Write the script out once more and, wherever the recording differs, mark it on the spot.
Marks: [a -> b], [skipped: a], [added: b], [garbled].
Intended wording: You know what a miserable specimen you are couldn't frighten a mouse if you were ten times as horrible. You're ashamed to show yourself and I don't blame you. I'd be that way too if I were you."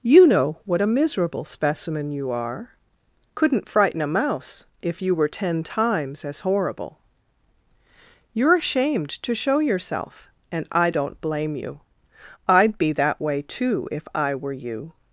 You know what a miserable specimen you are couldn't frighten a mouse if you were ten times as horrible. You're ashamed to show yourself and I don't blame you. I'd be that way too if I were you."